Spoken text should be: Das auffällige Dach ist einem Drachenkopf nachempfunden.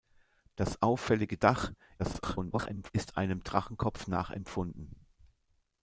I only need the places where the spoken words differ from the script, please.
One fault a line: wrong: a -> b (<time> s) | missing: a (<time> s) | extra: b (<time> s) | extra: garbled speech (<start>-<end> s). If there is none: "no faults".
extra: garbled speech (2.0-2.9 s)